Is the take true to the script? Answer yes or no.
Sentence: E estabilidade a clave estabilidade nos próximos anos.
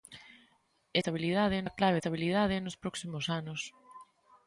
yes